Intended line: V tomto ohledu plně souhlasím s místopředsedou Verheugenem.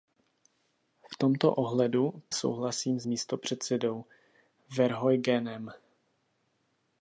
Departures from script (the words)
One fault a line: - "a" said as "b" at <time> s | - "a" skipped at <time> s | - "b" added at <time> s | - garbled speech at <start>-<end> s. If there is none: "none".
- "plně" skipped at 2.2 s